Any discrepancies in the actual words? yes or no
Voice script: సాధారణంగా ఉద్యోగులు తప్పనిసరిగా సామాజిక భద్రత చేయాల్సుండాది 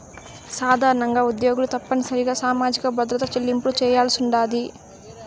yes